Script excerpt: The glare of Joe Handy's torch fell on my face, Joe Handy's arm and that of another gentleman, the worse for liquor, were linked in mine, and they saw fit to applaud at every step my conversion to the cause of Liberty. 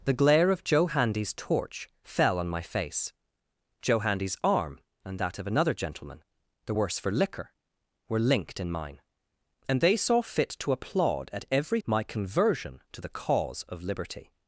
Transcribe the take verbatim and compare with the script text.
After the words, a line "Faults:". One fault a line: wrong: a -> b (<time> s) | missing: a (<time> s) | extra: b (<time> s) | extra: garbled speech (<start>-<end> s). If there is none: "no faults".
The glare of Joe Handy's torch fell on my face, Joe Handy's arm and that of another gentleman, the worse for liquor, were linked in mine, and they saw fit to applaud at every my conversion to the cause of Liberty.
Faults:
missing: step (11.8 s)